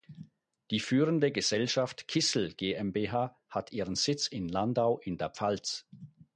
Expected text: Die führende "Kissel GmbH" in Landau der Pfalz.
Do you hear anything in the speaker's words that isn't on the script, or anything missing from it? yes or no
yes